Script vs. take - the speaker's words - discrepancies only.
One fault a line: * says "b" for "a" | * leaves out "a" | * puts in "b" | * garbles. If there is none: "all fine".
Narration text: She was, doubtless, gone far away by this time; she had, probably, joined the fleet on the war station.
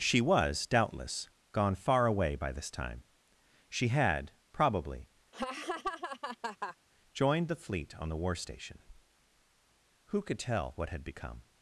* puts in "Who could tell what had become"